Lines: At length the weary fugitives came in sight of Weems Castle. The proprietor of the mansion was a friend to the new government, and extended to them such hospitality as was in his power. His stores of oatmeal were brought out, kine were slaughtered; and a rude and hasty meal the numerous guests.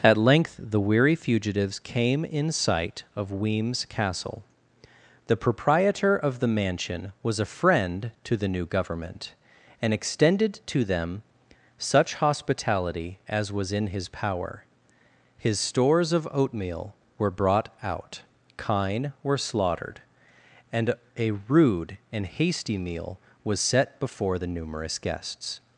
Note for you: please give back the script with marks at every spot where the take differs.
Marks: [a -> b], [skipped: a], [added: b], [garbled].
At length the weary fugitives came in sight of Weems Castle. The proprietor of the mansion was a friend to the new government, and extended to them such hospitality as was in his power. His stores of oatmeal were brought out, kine were slaughtered; and a rude and hasty meal [added: was set before] the numerous guests.